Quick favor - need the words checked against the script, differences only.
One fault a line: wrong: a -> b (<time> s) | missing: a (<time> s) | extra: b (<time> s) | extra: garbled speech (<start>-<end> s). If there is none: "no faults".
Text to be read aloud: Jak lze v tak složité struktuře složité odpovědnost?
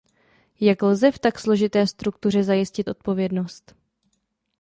wrong: složité -> zajistit (2.4 s)